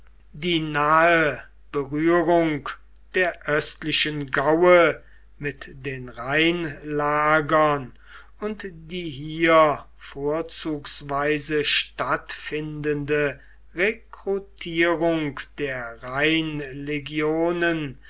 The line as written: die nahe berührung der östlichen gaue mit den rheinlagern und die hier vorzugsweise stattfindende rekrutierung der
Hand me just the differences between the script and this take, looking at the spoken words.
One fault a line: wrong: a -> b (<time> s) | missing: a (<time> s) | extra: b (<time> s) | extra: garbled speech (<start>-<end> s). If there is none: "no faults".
no faults